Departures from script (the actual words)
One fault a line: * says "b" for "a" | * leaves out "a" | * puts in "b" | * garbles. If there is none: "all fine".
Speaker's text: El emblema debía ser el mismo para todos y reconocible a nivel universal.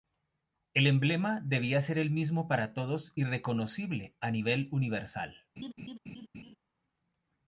all fine